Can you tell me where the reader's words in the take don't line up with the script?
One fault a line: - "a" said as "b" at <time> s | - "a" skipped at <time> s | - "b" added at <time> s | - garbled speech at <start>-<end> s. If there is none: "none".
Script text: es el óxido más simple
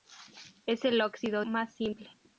none